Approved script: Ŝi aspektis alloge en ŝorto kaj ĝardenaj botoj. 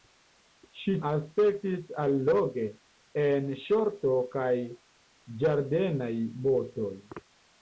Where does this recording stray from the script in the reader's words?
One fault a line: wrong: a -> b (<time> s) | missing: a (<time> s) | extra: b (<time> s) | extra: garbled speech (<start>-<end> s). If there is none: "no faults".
no faults